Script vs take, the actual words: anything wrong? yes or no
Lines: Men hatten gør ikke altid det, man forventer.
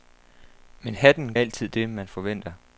yes